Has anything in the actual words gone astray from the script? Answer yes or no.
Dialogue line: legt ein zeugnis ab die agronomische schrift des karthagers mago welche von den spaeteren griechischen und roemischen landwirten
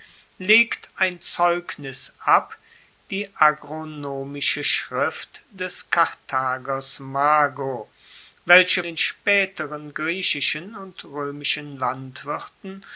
yes